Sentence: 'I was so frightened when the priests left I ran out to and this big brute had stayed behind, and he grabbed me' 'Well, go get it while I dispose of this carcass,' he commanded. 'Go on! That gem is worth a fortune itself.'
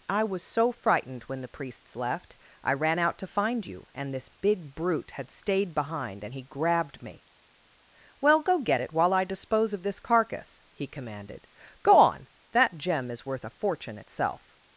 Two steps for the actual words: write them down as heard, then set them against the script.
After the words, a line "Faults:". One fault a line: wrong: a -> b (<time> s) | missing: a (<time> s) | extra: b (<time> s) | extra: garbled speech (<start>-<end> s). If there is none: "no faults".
'I was so frightened when the priests left I ran out to find you, and this big brute had stayed behind, and he grabbed me' 'Well, go get it while I dispose of this carcass,' he commanded. 'Go on! That gem is worth a fortune itself.'
Faults:
extra: find you (3.3 s)